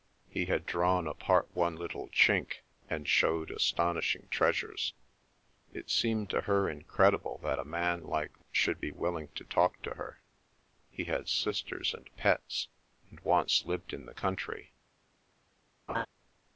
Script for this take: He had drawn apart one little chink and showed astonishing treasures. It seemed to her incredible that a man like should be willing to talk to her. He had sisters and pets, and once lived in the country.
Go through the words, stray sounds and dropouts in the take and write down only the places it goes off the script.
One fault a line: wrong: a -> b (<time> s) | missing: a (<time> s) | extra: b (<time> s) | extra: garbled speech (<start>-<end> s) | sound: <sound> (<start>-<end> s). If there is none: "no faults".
sound: laugh (15.9-16.1 s)